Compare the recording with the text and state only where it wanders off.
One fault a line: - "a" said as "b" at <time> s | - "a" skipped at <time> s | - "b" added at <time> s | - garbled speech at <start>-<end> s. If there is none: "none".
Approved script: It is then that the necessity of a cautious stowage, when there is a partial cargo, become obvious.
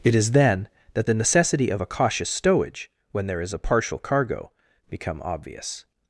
none